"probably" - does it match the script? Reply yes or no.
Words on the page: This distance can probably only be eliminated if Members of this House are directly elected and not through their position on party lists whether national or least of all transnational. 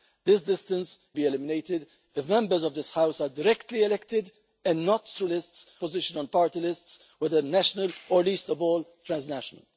no